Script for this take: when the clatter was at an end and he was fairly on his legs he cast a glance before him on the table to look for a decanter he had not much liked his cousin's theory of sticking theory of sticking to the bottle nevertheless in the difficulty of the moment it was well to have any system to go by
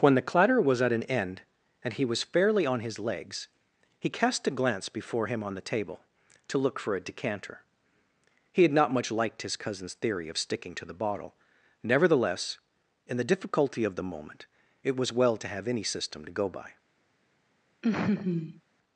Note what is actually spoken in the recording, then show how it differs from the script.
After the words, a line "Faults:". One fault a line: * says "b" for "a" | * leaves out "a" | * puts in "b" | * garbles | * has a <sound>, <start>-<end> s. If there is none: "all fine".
when the clatter was at an end and he was fairly on his legs he cast a glance before him on the table to look for a decanter he had not much liked his cousin's theory of sticking to the bottle nevertheless in the difficulty of the moment it was well to have any system to go by
Faults:
* leaves out "theory of sticking"
* has a laugh, 17.8-18.6 s